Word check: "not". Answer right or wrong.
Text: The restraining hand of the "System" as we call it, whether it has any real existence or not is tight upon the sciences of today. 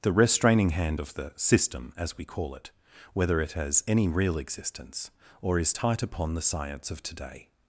wrong